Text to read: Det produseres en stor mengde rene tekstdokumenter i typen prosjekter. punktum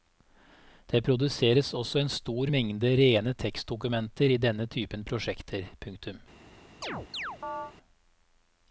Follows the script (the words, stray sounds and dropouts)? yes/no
no